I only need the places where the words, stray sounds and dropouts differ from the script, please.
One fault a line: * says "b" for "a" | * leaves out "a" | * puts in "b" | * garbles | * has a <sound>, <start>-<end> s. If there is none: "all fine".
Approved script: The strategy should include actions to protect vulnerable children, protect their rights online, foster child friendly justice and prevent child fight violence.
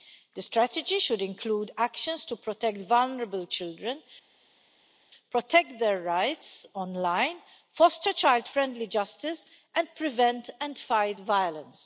* says "and" for "child"